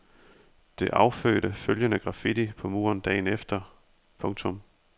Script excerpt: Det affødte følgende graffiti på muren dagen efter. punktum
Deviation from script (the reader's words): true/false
false